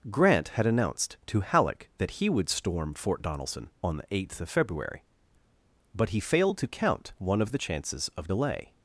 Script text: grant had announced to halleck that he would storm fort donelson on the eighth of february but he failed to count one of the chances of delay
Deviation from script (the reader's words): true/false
false